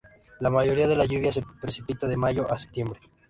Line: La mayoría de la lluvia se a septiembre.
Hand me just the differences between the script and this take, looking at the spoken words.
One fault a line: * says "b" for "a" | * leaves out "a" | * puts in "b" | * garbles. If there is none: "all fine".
* puts in "precipita de mayo"